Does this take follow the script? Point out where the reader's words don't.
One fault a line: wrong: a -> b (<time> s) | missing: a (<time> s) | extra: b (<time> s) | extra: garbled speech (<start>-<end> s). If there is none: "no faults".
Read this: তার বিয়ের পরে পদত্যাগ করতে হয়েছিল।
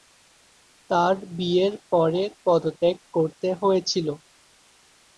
no faults